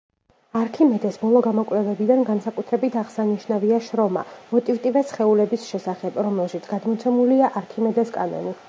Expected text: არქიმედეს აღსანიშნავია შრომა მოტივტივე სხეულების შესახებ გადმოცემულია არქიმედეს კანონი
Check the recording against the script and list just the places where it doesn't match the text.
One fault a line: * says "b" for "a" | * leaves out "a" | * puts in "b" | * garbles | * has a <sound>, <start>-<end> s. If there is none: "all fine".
* puts in "ბოლო გამოკვლევებიდან განსაკუთრებით"
* puts in "რომელშიც"